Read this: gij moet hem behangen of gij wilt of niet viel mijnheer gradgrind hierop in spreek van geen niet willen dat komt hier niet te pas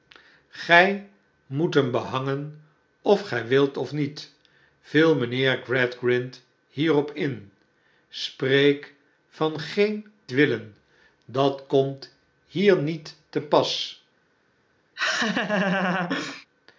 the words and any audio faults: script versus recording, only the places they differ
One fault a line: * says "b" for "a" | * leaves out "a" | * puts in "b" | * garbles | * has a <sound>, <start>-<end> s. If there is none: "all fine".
* leaves out "niet"
* has a laugh, 15.0-16.5 s